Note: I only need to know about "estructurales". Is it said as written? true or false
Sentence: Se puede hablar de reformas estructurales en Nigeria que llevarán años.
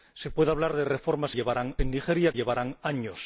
false